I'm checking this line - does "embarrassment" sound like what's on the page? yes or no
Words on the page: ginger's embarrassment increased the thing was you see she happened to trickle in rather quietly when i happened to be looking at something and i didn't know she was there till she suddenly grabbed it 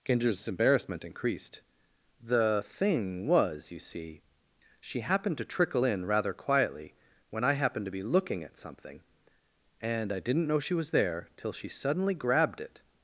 yes